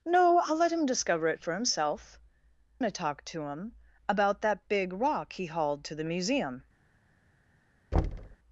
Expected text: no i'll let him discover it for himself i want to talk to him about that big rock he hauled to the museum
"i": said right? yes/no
no